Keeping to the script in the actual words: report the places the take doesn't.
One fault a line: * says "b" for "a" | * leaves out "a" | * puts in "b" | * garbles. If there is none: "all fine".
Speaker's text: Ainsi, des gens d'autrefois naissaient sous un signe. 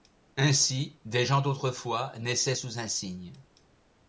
all fine